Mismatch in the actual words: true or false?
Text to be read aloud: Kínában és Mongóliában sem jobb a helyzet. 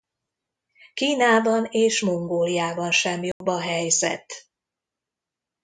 false